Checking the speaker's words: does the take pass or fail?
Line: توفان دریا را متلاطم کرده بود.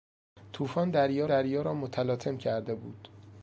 fail